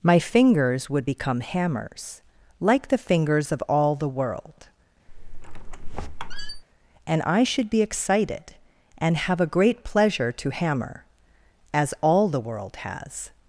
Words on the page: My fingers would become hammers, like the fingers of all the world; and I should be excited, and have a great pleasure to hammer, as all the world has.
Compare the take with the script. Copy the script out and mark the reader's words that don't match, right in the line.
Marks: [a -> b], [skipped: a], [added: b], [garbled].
My fingers would become hammers, like the fingers of all the world; and I should be excited, and have a great pleasure to hammer, as all the world has.